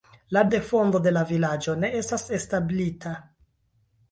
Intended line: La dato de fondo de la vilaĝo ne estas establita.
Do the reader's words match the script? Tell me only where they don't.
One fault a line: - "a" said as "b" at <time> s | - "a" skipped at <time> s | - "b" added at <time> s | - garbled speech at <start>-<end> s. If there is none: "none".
- "dato" skipped at 0.4 s